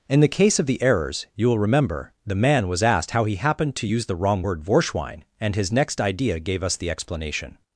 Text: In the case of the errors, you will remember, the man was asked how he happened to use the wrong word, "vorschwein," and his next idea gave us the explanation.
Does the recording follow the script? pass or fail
pass